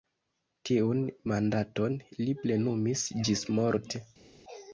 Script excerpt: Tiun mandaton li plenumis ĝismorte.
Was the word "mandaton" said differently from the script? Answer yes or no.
no